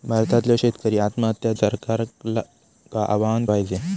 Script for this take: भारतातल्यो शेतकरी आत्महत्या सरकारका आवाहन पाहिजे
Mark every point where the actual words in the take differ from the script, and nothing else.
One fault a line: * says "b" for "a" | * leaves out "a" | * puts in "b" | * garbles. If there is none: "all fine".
all fine